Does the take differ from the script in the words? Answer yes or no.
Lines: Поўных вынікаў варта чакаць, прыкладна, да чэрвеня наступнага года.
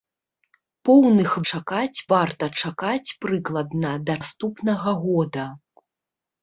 yes